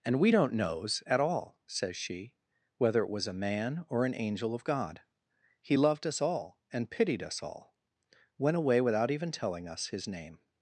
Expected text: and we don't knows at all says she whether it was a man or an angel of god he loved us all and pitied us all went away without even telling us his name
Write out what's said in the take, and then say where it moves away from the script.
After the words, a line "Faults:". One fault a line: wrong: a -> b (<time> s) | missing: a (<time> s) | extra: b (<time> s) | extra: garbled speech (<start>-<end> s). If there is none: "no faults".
and we don't knows at all says she whether it was a man or an angel of god he loved us all and pitied us all went away without even telling us his name
Faults:
no faults